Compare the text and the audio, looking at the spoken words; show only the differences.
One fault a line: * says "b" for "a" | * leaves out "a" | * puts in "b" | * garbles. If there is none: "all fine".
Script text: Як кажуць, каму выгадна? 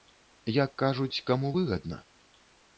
all fine